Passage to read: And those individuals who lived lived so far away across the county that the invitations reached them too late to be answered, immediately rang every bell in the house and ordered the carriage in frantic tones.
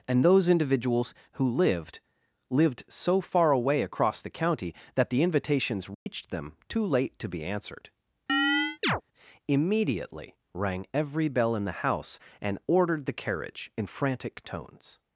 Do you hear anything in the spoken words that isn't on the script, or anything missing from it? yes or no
no